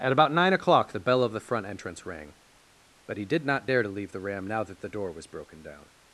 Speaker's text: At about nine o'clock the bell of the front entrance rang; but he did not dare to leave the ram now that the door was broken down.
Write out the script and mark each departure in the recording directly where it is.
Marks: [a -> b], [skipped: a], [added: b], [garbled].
At about nine o'clock the bell of the front entrance rang; but he did not dare to leave the ram now that the door was broken down.